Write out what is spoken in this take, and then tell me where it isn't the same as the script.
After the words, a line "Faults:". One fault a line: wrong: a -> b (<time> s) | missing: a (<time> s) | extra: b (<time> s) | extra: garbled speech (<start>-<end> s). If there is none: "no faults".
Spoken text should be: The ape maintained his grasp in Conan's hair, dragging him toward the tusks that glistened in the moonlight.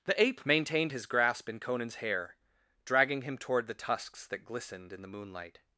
The ape maintained his grasp in Conan's hair, dragging him toward the tusks that glistened in the moonlight.
Faults:
no faults